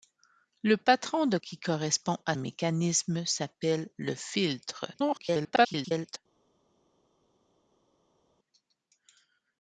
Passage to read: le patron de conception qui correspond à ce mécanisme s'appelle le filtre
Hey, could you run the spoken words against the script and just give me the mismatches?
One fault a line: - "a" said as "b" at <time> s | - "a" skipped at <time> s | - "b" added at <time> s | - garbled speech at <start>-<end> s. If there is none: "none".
- "conception" skipped at 1.4 s
- "ce" skipped at 2.3 s
- garbled speech at 4.9-6.2 s